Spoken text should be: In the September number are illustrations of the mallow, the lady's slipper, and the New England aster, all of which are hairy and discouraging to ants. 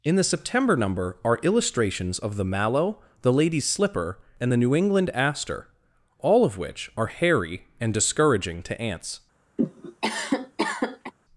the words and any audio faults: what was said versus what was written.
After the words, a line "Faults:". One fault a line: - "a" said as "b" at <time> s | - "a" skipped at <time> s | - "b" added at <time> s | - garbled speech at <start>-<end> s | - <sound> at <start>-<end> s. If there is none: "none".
In the September number are illustrations of the mallow, the lady's slipper, and the New England aster, all of which are hairy and discouraging to ants.
Faults:
- cough at 9.6-11.1 s